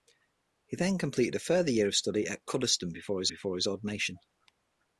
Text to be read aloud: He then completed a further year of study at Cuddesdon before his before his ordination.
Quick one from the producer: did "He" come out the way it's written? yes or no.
yes